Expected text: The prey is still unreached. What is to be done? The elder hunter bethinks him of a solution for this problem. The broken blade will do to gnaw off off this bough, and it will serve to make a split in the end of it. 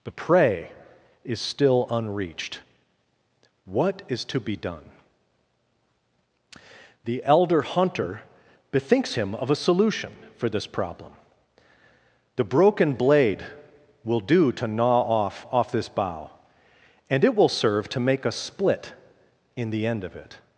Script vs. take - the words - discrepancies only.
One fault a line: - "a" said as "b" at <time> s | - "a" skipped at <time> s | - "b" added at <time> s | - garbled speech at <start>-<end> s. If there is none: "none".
none